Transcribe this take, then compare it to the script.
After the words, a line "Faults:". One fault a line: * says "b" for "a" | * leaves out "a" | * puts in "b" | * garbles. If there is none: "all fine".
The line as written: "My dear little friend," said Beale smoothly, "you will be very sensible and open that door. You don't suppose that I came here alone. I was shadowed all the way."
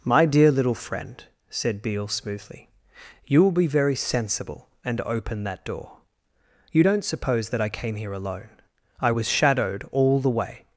"My dear little friend," said Beale smoothly, "you will be very sensible and open that door. You don't suppose that I came here alone. I was shadowed all the way."
Faults:
all fine